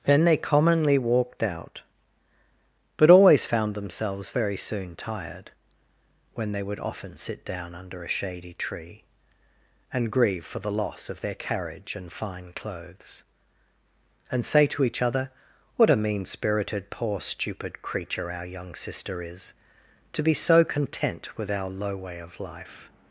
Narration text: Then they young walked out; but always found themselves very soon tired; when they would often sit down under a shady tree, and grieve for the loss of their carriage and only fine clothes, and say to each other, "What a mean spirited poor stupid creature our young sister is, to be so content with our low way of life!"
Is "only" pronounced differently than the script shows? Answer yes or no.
yes